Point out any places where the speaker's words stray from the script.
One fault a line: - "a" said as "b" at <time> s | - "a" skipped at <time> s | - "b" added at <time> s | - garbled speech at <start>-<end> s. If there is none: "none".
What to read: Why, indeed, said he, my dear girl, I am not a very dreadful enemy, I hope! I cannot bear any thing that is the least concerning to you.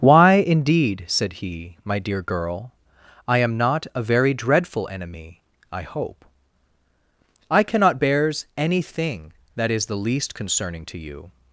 - "bear" said as "bears" at 8.0 s